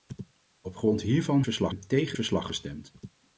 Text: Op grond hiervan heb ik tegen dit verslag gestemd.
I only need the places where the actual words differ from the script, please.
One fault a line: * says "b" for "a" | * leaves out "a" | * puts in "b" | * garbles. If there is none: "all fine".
* says "verslag" for "heb"
* leaves out "dit"